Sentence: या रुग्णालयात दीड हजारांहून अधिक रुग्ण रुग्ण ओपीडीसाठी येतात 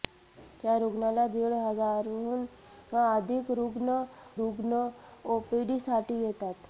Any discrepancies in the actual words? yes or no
no